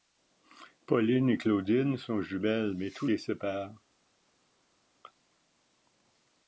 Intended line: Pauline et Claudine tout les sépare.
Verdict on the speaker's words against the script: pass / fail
fail